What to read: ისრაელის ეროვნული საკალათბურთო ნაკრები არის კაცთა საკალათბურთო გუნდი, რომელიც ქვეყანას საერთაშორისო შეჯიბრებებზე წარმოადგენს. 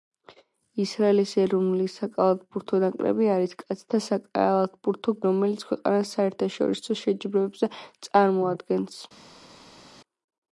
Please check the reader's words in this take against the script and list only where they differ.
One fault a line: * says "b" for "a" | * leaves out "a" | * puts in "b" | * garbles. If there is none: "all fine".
* leaves out "გუნდი"